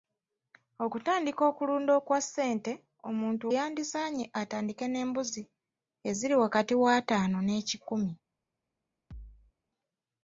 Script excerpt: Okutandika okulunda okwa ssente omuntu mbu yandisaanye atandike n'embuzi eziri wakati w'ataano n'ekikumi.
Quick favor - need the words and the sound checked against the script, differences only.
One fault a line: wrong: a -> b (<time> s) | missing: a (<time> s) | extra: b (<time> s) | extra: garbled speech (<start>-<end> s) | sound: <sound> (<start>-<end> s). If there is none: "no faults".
missing: mbu (3.5 s)
sound: thud (9.1-9.5 s)